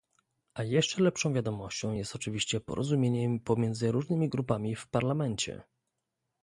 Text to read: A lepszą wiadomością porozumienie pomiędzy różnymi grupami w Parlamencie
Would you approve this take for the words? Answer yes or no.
no